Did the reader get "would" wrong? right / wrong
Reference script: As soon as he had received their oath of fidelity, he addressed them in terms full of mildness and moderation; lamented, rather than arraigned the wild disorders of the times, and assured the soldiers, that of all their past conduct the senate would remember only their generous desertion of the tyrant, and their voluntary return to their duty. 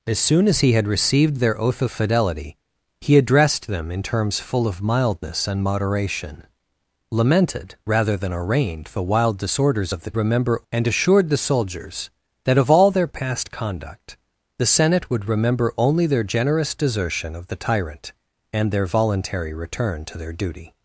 right